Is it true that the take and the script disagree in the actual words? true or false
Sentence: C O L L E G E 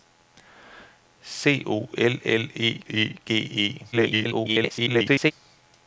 true